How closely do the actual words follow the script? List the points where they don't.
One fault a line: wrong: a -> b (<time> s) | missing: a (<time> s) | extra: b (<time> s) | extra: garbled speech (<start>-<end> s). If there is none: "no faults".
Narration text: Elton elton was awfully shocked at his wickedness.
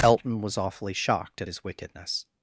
missing: elton (0.4 s)